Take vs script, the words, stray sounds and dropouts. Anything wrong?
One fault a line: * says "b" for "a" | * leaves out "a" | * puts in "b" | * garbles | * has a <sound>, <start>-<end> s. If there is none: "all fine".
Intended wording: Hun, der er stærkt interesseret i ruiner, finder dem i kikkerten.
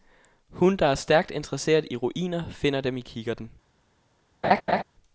* has a laugh, 4.4-4.8 s